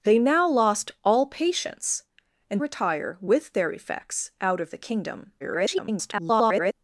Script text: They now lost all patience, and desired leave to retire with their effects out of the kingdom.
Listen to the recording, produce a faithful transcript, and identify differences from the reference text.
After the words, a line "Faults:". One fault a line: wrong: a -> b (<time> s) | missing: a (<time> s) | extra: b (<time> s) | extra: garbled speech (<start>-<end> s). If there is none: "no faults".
They now lost all patience, and retire with their effects out of the kingdom. [garbled]
Faults:
missing: desired leave to (2.6 s)
extra: garbled speech (5.4-6.7 s)